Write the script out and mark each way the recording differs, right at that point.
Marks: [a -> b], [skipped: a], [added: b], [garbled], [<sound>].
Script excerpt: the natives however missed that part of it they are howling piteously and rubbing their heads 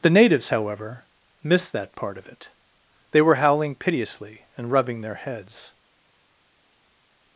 the natives however missed that part of it they [are -> were] howling piteously and rubbing their heads